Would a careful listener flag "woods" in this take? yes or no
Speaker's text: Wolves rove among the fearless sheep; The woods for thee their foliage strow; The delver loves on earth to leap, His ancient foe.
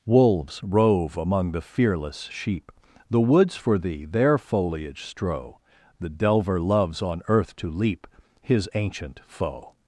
no